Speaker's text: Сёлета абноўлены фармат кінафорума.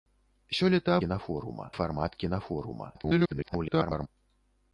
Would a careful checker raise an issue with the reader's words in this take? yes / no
yes